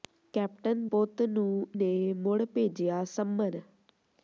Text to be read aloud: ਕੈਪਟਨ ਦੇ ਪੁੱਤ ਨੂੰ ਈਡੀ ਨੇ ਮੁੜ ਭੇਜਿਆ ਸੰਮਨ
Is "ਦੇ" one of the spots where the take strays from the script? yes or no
yes